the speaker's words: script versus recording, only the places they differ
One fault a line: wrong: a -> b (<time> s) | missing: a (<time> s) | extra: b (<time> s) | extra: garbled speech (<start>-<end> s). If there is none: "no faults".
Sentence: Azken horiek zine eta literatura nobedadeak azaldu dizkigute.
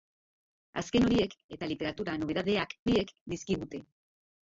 missing: zine (1.4 s)
wrong: azaldu -> horiek (2.9 s)